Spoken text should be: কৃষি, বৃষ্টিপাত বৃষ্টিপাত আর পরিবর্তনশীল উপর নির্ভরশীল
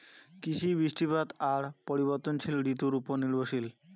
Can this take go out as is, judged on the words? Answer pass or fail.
fail